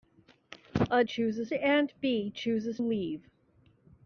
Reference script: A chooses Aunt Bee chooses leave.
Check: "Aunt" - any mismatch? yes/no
no